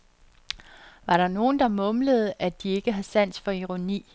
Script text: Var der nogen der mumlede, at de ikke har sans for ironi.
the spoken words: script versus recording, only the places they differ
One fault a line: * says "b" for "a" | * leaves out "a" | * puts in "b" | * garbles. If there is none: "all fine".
all fine